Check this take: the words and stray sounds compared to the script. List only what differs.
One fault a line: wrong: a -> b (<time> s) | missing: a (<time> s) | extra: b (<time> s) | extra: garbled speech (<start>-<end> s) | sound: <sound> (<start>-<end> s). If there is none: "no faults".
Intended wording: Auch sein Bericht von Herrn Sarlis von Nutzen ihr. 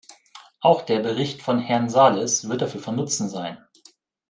wrong: sein -> der (0.8 s)
extra: wird dafür (2.5 s)
wrong: ihr -> sein (3.3 s)